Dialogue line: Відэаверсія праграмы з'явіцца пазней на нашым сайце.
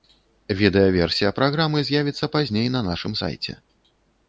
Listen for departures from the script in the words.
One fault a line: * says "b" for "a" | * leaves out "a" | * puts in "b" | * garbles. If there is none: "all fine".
all fine